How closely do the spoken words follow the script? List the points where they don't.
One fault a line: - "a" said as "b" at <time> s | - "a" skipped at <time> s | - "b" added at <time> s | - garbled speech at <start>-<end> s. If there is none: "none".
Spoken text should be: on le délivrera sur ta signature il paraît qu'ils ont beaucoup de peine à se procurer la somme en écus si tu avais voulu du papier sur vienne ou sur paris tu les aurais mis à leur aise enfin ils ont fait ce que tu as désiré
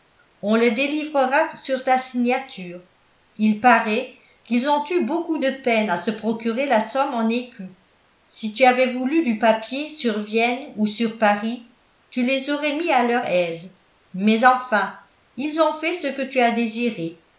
- "eu" added at 4.9 s
- "mais" added at 14.1 s